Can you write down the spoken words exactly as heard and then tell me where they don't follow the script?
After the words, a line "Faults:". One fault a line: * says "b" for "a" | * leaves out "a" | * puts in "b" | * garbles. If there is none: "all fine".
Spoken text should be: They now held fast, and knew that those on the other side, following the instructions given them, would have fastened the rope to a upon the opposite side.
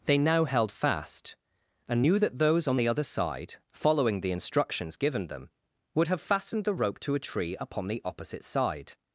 They now held fast, and knew that those on the other side, following the instructions given them, would have fastened the rope to a tree upon the opposite side.
Faults:
* puts in "tree"